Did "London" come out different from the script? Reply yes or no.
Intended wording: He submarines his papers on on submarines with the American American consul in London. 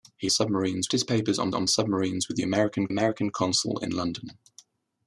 no